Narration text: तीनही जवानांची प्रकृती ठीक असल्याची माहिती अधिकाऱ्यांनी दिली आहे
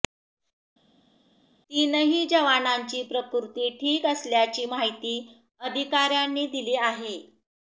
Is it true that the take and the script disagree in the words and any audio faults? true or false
false